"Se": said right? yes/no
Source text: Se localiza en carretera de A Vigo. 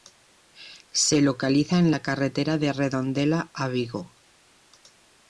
yes